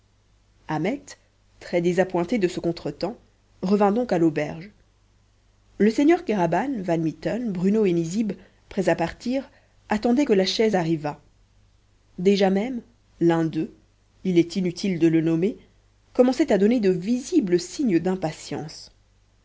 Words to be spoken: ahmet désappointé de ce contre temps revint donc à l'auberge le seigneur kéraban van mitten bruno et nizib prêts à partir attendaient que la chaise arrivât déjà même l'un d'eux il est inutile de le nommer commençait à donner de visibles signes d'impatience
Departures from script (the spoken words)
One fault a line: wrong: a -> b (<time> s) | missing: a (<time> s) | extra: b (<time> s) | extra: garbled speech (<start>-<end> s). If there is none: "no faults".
extra: très (1.6 s)